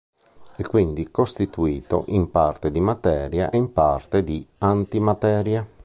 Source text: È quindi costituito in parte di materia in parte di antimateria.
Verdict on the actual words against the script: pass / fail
pass